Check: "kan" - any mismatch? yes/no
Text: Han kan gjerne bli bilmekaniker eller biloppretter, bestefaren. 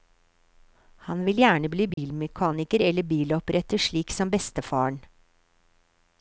yes